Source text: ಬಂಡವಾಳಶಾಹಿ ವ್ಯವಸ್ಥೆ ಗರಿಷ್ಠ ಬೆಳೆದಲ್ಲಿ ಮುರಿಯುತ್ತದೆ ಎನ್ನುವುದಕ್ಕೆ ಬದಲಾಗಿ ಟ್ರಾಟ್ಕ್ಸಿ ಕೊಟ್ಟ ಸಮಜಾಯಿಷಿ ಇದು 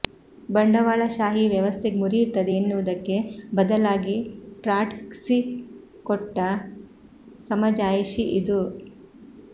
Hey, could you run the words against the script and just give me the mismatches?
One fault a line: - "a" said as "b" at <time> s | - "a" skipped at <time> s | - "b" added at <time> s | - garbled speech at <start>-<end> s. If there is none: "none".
- "ಗರಿಷ್ಠ ಬೆಳೆದಲ್ಲಿ" skipped at 1.9 s